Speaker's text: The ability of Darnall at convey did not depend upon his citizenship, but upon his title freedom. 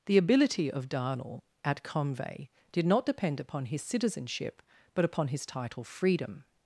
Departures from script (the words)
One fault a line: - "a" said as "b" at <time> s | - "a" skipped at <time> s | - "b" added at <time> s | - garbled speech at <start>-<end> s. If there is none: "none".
none